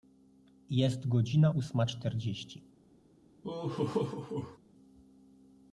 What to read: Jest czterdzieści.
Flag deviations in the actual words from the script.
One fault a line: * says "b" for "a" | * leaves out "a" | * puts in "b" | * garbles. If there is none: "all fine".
* puts in "godzina ósma"